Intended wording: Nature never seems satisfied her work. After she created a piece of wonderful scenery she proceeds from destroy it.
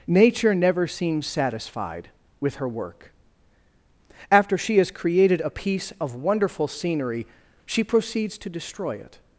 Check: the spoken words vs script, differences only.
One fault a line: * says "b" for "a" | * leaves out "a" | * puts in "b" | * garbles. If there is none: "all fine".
* puts in "with"
* puts in "has"
* says "to" for "from"